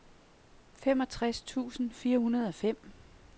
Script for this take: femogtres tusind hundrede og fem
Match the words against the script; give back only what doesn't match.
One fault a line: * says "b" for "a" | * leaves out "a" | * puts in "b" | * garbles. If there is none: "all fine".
* puts in "fire"